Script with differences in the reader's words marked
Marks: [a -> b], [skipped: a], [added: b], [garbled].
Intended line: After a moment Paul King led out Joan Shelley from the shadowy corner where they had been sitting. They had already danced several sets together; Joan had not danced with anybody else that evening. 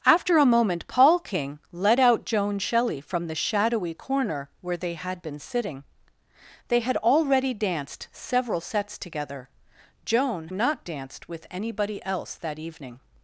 After a moment Paul King led out Joan Shelley from the shadowy corner where they had been sitting. They had already danced several sets together; Joan [skipped: had] not danced with anybody else that evening.